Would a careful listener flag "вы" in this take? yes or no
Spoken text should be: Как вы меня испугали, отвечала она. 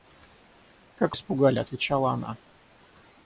yes